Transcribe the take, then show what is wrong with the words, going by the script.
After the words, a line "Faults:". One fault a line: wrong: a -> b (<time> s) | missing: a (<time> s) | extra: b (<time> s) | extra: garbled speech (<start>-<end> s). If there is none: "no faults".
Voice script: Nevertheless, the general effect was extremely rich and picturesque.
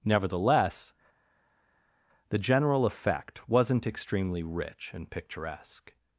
Nevertheless, the general effect wasn't extremely rich and picturesque.
Faults:
wrong: was -> wasn't (3.5 s)